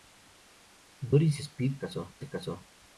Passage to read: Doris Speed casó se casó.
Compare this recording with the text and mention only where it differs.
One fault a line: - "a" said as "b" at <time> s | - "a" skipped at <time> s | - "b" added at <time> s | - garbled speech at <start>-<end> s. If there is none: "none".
none